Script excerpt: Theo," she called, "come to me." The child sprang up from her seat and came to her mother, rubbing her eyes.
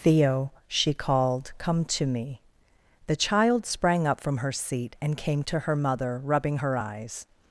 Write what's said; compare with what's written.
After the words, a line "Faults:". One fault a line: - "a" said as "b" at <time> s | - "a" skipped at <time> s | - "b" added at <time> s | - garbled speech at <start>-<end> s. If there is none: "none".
Theo," she called, "come to me." The child sprang up from her seat and came to her mother, rubbing her eyes.
Faults:
none